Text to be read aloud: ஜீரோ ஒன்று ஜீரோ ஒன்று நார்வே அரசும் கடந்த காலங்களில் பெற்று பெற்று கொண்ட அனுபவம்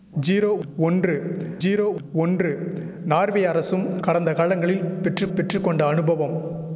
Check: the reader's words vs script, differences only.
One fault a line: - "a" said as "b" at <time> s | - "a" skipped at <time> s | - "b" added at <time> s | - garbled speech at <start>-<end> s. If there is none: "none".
none